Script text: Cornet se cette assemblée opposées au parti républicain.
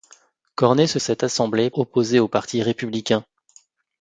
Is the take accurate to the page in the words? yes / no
yes